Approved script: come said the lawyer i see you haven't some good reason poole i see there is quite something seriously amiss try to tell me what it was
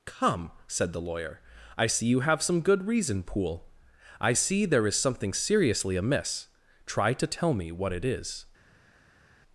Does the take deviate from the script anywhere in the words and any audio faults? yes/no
yes